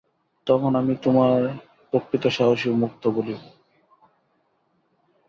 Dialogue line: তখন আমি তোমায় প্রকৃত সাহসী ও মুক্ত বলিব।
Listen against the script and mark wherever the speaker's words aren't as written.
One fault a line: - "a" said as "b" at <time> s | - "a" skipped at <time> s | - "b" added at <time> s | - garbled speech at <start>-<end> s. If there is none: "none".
none